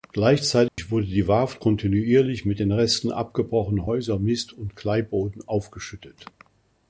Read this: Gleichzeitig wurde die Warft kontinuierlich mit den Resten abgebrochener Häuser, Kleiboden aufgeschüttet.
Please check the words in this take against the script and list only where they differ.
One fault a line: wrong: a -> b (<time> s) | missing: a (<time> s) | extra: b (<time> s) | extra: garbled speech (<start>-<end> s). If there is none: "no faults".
extra: Mist und (4.2 s)